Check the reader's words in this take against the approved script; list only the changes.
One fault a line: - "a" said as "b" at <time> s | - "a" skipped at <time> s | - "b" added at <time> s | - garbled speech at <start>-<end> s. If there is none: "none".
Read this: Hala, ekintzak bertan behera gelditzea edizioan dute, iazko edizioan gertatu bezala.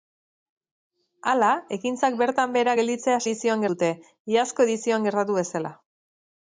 none